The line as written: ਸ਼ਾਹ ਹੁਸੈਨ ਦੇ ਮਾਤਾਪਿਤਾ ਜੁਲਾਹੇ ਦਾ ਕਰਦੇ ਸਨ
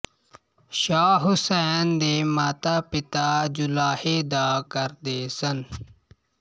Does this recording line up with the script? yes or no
yes